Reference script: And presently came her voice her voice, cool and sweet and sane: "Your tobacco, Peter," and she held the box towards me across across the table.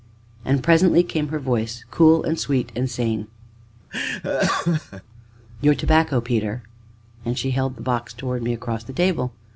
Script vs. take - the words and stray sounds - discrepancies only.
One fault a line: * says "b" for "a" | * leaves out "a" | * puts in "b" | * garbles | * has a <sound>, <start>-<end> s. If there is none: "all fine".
* leaves out "her voice"
* has a laugh, 3.9-5.0 s
* leaves out "across"